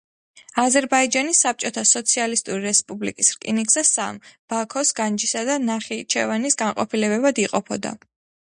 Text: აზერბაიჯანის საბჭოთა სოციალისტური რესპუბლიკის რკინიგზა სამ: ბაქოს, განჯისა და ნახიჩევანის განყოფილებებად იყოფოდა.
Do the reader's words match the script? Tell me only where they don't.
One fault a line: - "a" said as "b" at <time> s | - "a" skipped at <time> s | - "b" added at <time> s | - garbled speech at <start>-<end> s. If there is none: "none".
none